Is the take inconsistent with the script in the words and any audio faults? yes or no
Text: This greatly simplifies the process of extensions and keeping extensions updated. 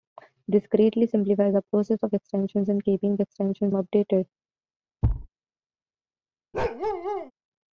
yes